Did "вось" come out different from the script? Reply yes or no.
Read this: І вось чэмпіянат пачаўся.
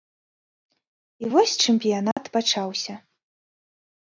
no